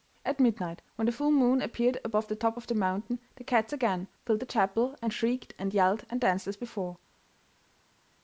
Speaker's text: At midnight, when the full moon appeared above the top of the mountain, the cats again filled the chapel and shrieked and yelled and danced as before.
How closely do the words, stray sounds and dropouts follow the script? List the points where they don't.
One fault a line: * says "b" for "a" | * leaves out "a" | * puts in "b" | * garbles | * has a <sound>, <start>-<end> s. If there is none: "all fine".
all fine